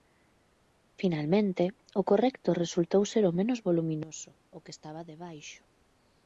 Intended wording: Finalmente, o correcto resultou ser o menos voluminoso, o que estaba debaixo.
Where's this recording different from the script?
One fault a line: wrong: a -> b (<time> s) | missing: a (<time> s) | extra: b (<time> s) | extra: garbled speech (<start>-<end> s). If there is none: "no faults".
no faults